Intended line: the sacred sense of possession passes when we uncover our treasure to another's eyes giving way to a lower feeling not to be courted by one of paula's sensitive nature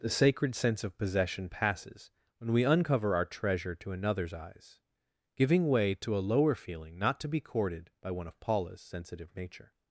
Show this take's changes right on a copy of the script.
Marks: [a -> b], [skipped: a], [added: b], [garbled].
the sacred sense of possession passes when we uncover our treasure to another's eyes giving way to a lower feeling not to be courted by one of paula's sensitive nature